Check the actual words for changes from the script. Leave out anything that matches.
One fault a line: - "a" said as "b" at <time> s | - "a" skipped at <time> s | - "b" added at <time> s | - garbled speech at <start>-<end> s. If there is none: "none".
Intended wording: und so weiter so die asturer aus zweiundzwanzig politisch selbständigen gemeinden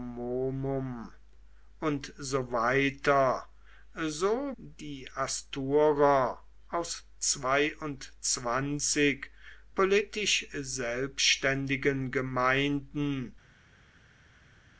none